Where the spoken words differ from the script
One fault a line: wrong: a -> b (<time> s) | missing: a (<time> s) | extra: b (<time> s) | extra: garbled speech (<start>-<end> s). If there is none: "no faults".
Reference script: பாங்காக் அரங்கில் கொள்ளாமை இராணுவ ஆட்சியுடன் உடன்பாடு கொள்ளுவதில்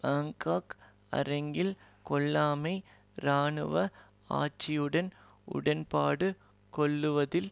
no faults